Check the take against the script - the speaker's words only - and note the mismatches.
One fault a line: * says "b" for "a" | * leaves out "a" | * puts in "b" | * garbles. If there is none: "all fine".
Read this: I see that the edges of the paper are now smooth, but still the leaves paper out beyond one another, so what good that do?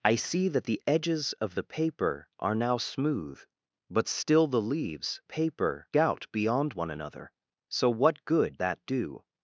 all fine